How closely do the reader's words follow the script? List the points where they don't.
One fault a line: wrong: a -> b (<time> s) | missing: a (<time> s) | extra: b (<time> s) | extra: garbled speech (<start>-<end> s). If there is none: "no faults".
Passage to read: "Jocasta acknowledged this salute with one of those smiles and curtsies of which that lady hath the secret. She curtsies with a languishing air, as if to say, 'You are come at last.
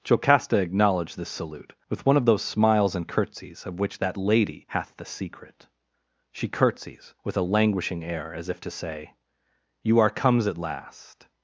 wrong: come -> comes (10.1 s)